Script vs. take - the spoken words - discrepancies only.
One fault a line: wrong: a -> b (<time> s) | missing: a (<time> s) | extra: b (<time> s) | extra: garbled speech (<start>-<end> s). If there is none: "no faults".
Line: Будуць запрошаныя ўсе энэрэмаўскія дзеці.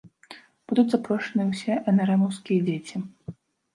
no faults